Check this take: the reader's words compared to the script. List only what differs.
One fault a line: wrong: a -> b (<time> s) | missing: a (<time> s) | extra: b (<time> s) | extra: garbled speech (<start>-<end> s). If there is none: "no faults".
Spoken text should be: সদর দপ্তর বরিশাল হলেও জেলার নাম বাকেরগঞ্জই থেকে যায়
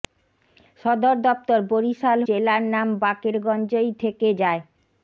missing: হলেও (2.2 s)